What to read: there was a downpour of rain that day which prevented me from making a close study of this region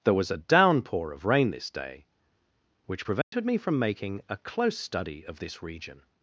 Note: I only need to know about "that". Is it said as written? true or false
false